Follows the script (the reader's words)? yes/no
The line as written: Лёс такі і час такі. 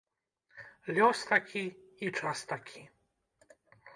yes